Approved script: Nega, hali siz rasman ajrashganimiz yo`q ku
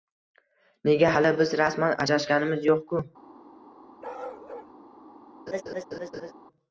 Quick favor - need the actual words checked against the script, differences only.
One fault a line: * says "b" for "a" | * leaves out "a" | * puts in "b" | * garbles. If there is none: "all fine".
* says "biz" for "siz"